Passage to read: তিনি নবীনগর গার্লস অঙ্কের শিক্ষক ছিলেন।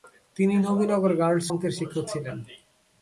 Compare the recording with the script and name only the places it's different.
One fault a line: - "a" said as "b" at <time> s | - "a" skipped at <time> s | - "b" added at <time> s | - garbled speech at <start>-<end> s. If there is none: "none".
none